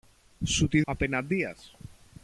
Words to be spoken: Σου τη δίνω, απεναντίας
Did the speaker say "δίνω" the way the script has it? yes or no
no